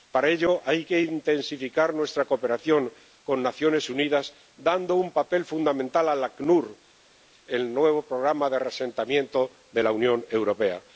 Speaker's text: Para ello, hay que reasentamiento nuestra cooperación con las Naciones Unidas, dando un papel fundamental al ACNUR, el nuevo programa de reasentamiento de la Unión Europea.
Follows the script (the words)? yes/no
no